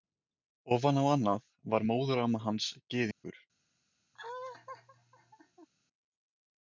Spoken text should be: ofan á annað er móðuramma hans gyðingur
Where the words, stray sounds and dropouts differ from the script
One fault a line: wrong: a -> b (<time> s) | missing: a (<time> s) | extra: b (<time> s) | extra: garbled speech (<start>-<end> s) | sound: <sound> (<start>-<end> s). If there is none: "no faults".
wrong: er -> var (1.8 s)
sound: dropout (3.1-3.2 s)
sound: laugh (4.1-5.7 s)